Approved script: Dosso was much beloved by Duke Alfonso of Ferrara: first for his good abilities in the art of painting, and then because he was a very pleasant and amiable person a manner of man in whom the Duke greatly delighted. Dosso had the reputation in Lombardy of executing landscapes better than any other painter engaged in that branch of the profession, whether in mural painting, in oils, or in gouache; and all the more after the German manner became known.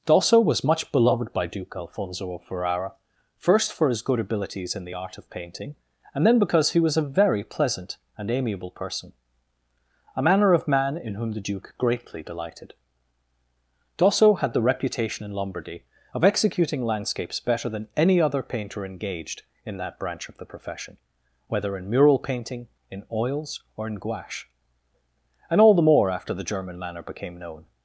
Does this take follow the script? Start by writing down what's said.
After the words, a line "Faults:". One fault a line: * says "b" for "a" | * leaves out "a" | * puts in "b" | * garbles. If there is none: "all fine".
Dosso was much beloved by Duke Alfonso of Ferrara: first for his good abilities in the art of painting, and then because he was a very pleasant and amiable person a manner of man in whom the Duke greatly delighted. Dosso had the reputation in Lombardy of executing landscapes better than any other painter engaged in that branch of the profession, whether in mural painting, in oils, or in gouache; and all the more after the German manner became known.
Faults:
all fine